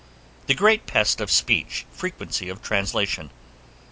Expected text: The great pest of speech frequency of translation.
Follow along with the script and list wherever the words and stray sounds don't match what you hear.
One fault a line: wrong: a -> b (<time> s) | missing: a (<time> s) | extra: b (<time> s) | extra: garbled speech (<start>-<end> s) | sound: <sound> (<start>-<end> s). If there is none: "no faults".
no faults